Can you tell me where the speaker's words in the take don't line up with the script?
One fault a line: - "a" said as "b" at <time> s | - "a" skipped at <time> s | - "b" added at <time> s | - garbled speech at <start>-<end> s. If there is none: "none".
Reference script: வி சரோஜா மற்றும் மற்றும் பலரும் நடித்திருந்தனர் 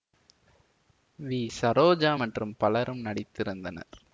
- "மற்றும்" skipped at 2.5 s